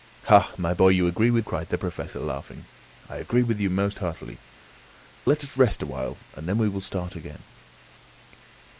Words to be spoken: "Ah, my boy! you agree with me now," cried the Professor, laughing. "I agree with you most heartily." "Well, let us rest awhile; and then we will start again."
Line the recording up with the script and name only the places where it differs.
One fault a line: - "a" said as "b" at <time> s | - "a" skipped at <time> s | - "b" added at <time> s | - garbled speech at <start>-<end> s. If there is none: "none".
- "me now" skipped at 1.4 s
- "Well" skipped at 4.4 s